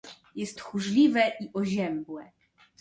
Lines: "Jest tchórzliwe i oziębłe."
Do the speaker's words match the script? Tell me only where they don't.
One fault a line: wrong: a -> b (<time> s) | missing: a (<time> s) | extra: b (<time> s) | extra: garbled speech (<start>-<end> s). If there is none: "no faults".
no faults